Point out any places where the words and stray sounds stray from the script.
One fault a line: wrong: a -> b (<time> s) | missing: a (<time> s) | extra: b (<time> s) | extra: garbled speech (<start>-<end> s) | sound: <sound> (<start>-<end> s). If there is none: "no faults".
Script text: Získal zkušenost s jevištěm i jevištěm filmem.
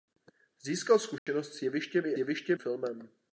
sound: dropout (1.2-1.3 s)